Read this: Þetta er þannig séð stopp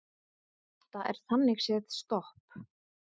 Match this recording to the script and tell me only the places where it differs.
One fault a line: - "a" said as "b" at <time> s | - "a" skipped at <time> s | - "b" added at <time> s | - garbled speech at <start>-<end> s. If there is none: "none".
none